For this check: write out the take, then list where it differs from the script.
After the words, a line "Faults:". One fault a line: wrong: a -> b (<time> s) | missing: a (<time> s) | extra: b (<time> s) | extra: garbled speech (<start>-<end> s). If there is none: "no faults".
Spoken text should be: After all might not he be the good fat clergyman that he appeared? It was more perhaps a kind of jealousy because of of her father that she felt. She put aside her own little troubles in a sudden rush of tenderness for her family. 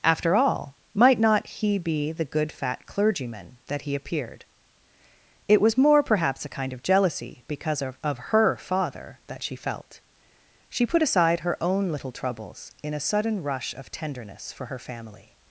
After all might not he be the good fat clergyman that he appeared? It was more perhaps a kind of jealousy because of of her father that she felt. She put aside her own little troubles in a sudden rush of tenderness for her family.
Faults:
no faults